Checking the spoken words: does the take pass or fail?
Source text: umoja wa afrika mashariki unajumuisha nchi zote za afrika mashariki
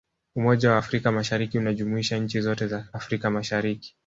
pass